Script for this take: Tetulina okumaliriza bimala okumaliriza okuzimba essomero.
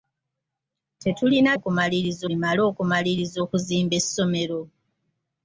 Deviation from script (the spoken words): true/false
false